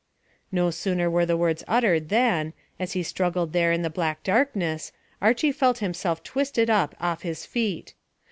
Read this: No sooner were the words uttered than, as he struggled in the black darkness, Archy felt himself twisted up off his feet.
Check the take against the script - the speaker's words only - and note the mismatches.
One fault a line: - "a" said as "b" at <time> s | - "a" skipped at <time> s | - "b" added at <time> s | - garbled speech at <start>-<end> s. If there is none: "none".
- "there" added at 3.5 s